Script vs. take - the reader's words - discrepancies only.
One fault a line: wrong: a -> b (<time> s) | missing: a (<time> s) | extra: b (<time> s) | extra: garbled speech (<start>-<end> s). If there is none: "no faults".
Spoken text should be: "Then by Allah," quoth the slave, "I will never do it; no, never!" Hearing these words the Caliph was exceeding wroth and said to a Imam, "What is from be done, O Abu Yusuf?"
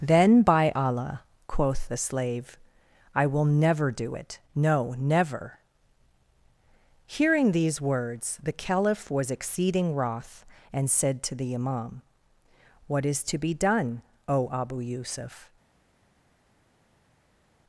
wrong: a -> the (11.3 s)
wrong: from -> to (13.2 s)